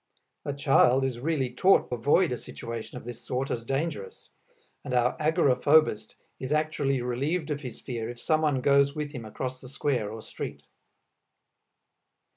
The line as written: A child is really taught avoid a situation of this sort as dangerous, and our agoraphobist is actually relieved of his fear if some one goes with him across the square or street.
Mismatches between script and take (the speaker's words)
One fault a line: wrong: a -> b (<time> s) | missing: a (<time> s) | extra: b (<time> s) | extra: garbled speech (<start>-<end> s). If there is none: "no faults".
no faults